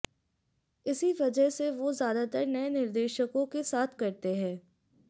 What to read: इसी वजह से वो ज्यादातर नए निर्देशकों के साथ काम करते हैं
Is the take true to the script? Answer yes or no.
no